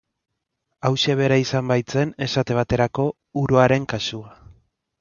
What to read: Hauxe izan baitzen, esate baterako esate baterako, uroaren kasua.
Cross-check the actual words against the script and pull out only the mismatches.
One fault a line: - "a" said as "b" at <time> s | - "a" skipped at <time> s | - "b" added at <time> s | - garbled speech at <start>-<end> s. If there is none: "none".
- "bera" added at 1.2 s
- "esate baterako" skipped at 3.1 s